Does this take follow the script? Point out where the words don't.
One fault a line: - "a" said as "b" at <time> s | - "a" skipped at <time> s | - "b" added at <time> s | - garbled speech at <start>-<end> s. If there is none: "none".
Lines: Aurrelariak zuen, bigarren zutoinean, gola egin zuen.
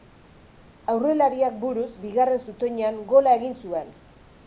- "zuen" said as "buruz" at 1.6 s